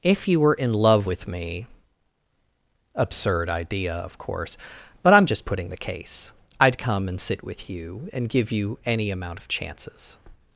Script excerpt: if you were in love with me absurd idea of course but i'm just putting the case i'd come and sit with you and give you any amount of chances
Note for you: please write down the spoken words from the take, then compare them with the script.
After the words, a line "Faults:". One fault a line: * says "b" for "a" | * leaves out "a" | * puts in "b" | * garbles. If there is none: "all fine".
if you were in love with me absurd idea of course but i'm just putting the case i'd come and sit with you and give you any amount of chances
Faults:
all fine